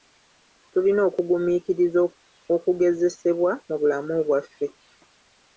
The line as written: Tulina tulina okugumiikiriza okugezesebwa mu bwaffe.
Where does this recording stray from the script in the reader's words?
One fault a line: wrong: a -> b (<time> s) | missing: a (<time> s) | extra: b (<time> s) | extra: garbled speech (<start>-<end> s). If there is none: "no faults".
missing: tulina (1.0 s)
extra: bulamu (3.8 s)